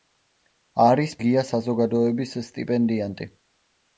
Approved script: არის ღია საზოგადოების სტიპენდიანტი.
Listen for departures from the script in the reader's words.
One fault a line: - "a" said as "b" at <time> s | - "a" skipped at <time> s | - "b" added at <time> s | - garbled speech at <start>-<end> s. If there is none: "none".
none